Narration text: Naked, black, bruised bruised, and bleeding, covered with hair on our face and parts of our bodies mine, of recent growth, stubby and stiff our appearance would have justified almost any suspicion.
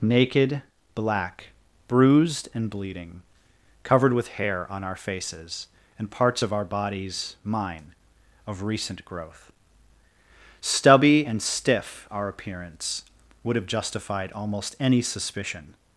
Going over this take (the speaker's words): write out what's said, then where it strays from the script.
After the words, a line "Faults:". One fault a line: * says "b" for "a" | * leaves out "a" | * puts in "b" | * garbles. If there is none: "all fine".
Naked, black, bruised, and bleeding, covered with hair on our faces and parts of our bodies mine, of recent growth, stubby and stiff our appearance would have justified almost any suspicion.
Faults:
* leaves out "bruised"
* says "faces" for "face"